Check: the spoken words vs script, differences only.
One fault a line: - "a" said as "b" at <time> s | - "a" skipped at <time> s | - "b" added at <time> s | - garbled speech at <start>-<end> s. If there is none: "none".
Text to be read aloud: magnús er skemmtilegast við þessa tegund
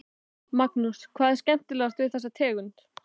- "hvað" added at 1.2 s